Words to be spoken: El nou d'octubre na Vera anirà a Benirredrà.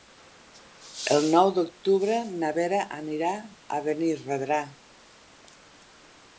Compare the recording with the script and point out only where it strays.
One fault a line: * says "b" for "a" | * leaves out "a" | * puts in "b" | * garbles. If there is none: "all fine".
all fine